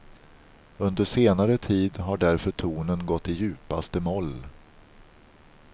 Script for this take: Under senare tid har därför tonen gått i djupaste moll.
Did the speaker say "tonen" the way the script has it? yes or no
yes